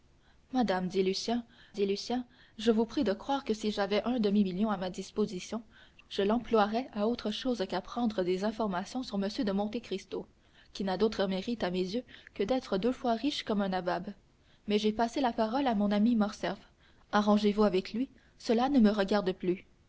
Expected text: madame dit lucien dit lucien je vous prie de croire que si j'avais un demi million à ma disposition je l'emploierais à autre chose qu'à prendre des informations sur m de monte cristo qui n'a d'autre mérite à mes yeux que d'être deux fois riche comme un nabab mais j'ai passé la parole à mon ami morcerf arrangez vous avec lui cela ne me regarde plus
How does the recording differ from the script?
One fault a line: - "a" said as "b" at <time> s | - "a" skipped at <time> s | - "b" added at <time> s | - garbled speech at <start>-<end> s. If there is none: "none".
none